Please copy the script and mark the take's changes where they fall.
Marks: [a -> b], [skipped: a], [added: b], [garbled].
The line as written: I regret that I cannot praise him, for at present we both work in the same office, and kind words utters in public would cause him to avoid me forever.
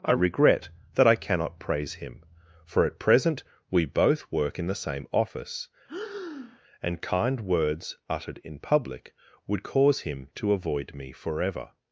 I regret that I cannot praise him, for at present we both work in the same office, and kind words [utters -> uttered] in public would cause him to avoid me forever.